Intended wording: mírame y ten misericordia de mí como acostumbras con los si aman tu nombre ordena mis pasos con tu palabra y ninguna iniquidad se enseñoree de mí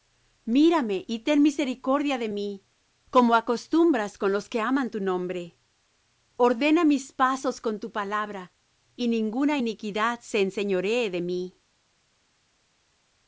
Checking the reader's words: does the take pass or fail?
fail